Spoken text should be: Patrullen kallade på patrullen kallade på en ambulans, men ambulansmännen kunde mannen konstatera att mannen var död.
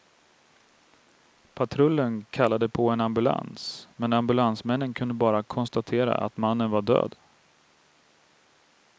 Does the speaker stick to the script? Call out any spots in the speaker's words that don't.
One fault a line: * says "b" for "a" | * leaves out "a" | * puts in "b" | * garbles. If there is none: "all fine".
* leaves out "patrullen kallade på"
* says "bara" for "mannen"